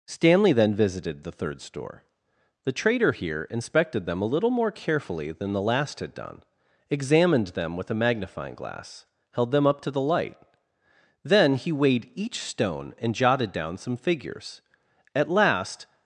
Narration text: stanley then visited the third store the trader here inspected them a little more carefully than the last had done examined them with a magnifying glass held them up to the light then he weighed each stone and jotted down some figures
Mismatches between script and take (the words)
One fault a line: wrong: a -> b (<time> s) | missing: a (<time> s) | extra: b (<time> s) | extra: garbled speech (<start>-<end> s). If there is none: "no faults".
extra: at last (15.1 s)